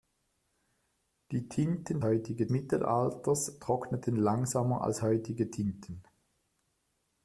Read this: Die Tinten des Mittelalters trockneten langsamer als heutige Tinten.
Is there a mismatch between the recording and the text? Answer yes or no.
yes